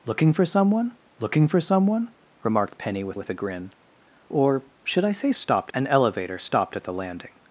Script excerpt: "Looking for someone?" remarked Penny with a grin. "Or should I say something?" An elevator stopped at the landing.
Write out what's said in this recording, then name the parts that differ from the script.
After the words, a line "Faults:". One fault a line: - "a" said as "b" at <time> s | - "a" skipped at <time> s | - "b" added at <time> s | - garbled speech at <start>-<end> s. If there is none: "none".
"Looking for someone looking for someone?" remarked Penny with with a grin. "Or should I say stopped?" An elevator stopped at the landing.
Faults:
- "looking for someone" added at 1.2 s
- "with" added at 3.1 s
- "something" said as "stopped" at 5.3 s